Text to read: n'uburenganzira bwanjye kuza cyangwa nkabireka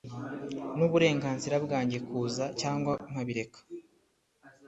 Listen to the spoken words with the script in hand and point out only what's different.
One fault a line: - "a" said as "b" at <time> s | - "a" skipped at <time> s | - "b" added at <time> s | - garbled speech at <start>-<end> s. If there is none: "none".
none